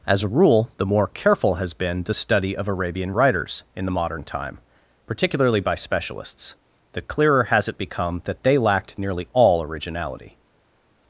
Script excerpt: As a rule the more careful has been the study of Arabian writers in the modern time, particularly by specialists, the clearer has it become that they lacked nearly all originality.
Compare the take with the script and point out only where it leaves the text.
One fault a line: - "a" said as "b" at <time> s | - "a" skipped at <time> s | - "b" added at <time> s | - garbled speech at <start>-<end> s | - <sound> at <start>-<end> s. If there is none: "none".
none